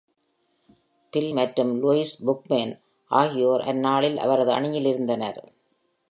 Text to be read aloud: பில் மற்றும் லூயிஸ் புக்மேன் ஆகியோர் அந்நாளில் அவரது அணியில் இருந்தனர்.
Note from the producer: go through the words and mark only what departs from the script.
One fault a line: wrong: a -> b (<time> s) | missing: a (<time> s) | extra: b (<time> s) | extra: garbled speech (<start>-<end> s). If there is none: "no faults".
no faults